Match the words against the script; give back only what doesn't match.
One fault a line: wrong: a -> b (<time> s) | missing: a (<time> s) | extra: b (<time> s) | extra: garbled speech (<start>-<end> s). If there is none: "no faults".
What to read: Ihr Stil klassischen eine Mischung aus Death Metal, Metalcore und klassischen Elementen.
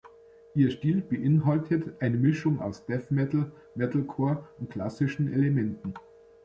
wrong: klassischen -> beinhaltet (1.0 s)